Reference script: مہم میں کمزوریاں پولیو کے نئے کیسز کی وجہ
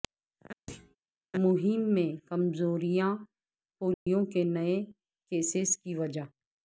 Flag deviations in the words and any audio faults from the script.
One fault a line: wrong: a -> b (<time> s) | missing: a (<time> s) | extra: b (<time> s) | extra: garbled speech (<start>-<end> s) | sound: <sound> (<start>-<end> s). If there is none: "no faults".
sound: thud (0.7-1.0 s)
sound: dropout (3.9-4.1 s)